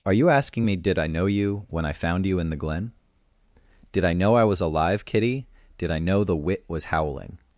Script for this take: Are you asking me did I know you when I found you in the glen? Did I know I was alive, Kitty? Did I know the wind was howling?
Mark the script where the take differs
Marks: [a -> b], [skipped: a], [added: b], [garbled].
Are you asking me did I know you when I found you in the glen? Did I know I was alive, Kitty? Did I know the [wind -> wit] was howling?